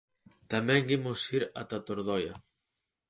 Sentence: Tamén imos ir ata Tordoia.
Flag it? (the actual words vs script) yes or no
no